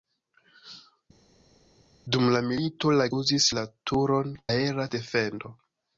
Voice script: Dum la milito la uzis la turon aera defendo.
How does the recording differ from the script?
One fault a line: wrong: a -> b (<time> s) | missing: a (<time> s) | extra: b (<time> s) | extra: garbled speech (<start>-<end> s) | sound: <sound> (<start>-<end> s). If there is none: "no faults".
no faults